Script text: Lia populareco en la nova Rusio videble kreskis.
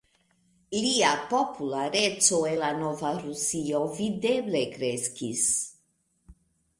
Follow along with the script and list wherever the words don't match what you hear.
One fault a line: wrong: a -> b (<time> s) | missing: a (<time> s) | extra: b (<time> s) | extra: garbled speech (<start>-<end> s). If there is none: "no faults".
no faults